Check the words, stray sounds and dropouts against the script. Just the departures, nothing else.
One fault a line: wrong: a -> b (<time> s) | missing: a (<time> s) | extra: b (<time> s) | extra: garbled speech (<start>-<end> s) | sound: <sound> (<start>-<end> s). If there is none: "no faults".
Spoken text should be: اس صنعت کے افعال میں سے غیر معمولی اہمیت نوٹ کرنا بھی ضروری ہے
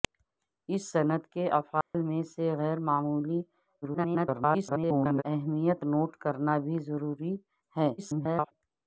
sound: dropout (1.8-1.9 s)
extra: garbled speech (3.8-5.2 s)
extra: garbled speech (8.0-8.5 s)